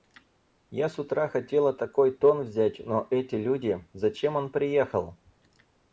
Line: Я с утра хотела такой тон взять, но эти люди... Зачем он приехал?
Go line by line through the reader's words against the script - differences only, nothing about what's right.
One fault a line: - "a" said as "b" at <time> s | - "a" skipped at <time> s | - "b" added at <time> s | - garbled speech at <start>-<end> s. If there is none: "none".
none